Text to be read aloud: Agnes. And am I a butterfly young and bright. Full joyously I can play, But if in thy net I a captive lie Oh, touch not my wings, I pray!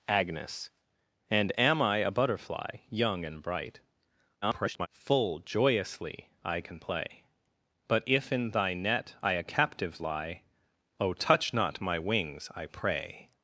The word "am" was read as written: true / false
true